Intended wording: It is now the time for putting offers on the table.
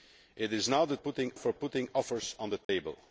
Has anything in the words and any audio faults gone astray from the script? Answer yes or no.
yes